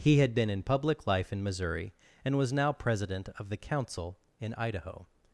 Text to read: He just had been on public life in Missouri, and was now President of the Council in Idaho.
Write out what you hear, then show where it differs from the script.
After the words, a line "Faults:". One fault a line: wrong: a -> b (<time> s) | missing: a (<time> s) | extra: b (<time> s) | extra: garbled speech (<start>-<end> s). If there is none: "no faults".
He had been in public life in Missouri, and was now President of the Council in Idaho.
Faults:
missing: just (0.2 s)
wrong: on -> in (0.5 s)